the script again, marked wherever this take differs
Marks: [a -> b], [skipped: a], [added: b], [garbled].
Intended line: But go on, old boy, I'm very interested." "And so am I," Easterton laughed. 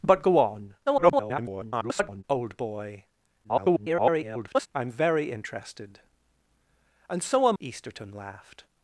But go on, [garbled] old boy, [garbled] I'm very interested." "And so am [skipped: I,"] Easterton laughed.